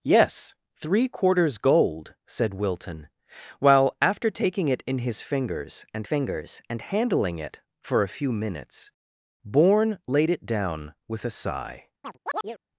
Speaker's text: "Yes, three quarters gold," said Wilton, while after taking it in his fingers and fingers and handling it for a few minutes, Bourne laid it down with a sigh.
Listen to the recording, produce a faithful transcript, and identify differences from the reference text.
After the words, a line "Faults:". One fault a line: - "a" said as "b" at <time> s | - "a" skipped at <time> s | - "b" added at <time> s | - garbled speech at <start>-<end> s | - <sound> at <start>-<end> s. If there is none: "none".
"Yes, three quarters gold," said Wilton, while after taking it in his fingers and fingers and handling it for a few minutes, Bourne laid it down with a sigh.
Faults:
- chirp at 12.0-12.6 s